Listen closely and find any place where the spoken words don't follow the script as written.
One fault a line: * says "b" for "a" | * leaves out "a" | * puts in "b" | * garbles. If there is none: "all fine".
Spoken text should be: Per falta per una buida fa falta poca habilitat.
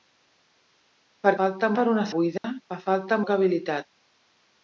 all fine